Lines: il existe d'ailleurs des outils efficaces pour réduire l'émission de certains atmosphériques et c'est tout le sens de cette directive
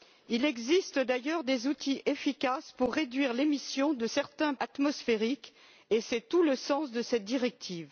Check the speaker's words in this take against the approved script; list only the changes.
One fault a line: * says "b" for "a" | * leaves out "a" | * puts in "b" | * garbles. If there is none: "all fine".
all fine